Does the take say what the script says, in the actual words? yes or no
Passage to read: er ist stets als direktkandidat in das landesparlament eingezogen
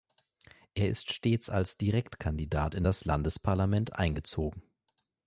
yes